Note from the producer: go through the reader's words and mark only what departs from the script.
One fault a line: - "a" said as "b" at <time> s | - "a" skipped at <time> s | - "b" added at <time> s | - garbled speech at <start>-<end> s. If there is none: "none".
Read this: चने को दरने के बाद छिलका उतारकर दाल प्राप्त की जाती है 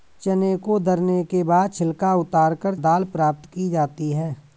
none